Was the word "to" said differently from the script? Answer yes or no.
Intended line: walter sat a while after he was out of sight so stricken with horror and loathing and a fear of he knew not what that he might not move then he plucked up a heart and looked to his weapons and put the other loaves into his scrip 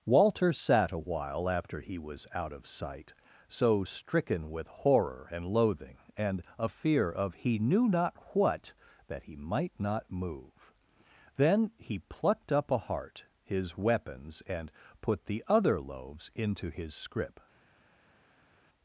yes